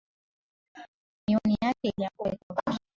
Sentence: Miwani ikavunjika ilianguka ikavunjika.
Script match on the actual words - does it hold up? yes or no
no